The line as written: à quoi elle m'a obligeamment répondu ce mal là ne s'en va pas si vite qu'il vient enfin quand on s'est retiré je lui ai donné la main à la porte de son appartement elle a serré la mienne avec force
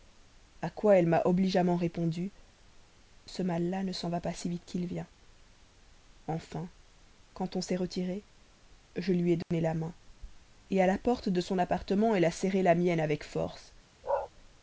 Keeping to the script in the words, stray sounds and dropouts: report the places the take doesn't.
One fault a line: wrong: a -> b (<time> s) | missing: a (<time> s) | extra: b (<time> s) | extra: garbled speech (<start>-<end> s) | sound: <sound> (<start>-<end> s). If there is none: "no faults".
sound: dropout (9.4-9.5 s)
sound: bark (14.0-14.3 s)